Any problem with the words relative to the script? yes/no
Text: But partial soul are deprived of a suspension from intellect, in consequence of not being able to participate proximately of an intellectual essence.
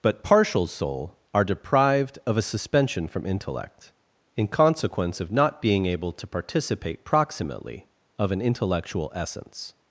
no